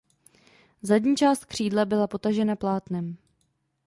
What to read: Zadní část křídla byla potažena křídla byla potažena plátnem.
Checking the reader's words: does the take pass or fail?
fail